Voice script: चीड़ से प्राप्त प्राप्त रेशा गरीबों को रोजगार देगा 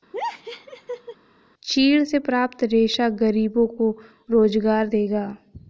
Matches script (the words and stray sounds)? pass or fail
fail